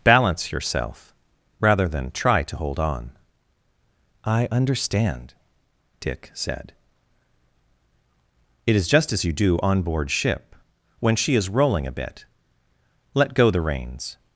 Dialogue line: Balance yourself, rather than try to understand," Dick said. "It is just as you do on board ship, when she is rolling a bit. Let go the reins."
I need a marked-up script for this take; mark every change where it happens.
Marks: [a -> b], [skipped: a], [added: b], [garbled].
Balance yourself, rather than try to [added: hold on I] understand," Dick said. "It is just as you do on board ship, when she is rolling a bit. Let go the reins."